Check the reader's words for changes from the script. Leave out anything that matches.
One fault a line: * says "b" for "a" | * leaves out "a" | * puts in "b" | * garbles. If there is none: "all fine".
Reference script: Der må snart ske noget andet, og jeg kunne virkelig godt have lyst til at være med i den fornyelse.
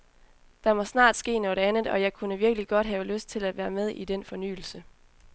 all fine